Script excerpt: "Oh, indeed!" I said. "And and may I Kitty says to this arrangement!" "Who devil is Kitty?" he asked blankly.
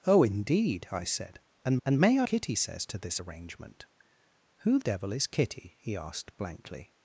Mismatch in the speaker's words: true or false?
false